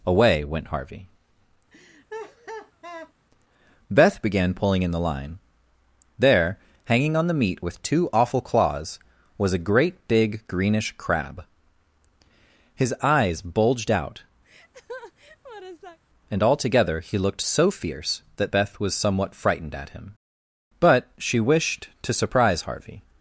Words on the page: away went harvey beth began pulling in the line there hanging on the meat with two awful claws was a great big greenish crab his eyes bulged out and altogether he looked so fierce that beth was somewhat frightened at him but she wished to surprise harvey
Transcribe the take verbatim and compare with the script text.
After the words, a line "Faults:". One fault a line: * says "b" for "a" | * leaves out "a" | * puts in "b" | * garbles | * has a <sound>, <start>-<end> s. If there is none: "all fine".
away went harvey beth began pulling in the line there hanging on the meat with two awful claws was a great big greenish crab his eyes bulged out and altogether he looked so fierce that beth was somewhat frightened at him but she wished to surprise harvey
Faults:
* has a laugh, 1.7-3.1 s
* has a laugh, 14.4-16.0 s